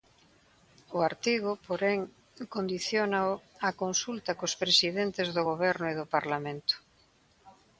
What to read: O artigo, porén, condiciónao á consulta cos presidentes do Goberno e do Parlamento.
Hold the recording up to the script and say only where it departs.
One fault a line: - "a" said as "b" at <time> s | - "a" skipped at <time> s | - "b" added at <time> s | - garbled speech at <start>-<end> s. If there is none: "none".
none